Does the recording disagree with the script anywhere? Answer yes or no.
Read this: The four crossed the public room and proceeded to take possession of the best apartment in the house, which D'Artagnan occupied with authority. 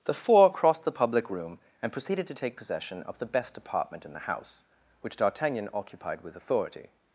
no